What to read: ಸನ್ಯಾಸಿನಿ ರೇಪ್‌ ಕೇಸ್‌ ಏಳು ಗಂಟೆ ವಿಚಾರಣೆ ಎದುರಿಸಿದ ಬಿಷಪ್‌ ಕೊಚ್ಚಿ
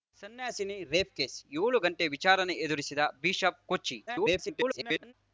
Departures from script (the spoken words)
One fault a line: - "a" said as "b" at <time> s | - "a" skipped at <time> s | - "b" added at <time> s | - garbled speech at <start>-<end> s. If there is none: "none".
- garbled speech at 4.1-5.1 s